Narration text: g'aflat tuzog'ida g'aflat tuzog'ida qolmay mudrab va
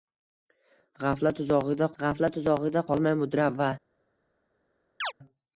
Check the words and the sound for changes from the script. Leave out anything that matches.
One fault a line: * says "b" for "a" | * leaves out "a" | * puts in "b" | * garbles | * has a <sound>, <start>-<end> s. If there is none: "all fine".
* has a chirp, 5.0-5.1 s